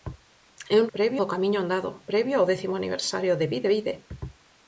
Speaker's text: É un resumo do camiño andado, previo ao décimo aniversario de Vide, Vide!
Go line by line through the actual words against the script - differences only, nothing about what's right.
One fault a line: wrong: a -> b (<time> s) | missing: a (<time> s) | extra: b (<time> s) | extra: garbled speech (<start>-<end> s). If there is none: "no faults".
wrong: resumo -> previo (0.9 s)